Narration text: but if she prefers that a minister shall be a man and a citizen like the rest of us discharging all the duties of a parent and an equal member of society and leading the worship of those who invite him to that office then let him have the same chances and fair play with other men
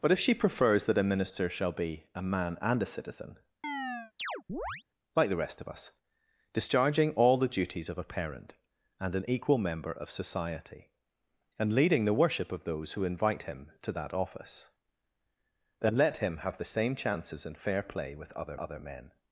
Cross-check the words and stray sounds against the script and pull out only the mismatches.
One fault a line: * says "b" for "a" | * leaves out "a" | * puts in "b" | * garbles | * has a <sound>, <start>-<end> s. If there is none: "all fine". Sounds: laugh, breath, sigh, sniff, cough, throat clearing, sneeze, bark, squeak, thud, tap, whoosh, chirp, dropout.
* has a chirp, 3.6-4.8 s
* puts in "other"